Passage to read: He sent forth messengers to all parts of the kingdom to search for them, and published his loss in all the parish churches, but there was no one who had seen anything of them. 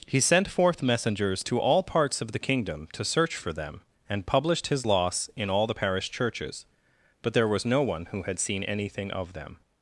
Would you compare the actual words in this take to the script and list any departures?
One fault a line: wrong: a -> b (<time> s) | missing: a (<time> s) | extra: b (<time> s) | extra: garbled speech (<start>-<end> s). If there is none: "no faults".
no faults